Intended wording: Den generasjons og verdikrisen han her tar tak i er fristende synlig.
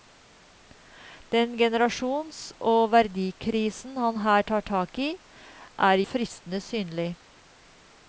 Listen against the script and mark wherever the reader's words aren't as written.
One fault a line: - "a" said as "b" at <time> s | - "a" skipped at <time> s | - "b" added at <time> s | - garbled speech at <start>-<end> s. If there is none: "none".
none